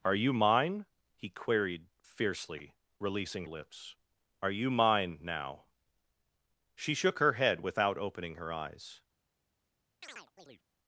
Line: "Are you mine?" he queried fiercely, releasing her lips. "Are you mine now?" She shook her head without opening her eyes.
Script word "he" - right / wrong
right